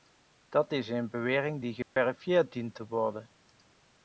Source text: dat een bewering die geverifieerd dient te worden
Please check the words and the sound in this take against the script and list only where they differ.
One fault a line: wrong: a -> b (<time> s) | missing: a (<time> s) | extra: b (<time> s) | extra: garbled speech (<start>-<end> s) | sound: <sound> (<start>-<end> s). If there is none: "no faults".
extra: is (0.7 s)
sound: dropout (1.8-2.0 s)